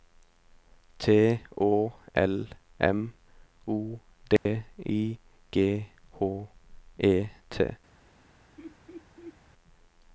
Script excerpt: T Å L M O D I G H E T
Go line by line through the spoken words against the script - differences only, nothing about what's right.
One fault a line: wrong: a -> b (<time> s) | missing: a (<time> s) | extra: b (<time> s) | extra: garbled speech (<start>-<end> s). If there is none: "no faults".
no faults